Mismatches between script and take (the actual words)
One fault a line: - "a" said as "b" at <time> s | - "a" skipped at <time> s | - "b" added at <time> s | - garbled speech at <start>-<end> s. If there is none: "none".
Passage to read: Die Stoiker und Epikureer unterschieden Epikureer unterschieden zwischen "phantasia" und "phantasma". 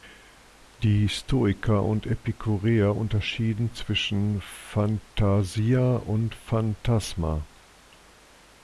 - "Epikureer unterschieden" skipped at 3.7 s